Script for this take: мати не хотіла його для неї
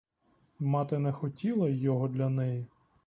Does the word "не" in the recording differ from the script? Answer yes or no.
no